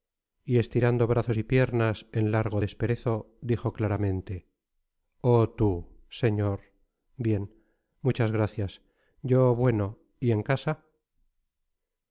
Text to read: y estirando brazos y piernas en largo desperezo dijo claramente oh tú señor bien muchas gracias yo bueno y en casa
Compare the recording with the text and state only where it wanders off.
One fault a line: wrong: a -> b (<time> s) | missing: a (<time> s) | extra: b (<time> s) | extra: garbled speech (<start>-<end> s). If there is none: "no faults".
no faults